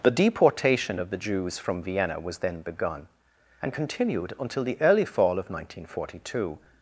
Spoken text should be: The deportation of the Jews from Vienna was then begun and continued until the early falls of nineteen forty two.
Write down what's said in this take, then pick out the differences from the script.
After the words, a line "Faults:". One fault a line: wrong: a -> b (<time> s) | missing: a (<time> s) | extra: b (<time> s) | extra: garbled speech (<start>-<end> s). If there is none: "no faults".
The deportation of the Jews from Vienna was then begun and continued until the early fall of nineteen forty two.
Faults:
wrong: falls -> fall (5.1 s)